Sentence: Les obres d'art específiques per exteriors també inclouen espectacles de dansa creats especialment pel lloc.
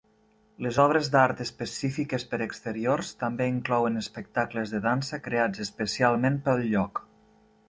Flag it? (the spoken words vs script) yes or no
no